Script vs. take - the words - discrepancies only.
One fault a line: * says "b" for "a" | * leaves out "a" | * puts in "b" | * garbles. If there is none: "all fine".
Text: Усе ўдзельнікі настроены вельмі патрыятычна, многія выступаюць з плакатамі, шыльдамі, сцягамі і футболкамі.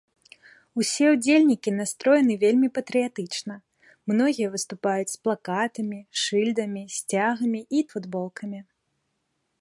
all fine